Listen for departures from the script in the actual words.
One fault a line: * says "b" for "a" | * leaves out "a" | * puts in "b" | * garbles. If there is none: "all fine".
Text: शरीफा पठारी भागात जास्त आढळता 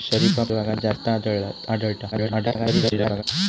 * leaves out "पठारी"
* garbles